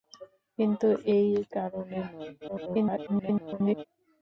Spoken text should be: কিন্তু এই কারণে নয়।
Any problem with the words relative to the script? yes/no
yes